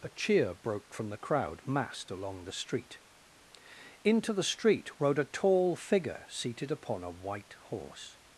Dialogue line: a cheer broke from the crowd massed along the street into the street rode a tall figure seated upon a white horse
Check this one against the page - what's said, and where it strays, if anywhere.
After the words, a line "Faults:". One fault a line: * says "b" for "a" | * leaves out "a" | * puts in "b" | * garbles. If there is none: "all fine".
a cheer broke from the crowd massed along the street into the street rode a tall figure seated upon a white horse
Faults:
all fine